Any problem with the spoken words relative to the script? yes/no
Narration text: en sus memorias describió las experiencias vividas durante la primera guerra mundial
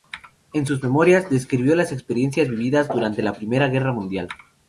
no